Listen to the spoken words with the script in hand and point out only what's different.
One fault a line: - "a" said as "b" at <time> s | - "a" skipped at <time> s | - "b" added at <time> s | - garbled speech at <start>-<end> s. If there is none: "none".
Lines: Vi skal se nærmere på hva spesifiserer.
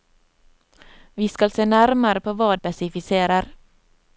none